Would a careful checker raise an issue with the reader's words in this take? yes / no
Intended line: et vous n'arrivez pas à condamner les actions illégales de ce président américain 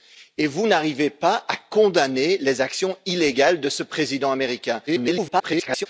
yes